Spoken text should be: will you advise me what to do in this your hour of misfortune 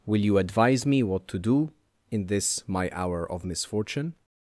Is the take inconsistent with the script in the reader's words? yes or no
yes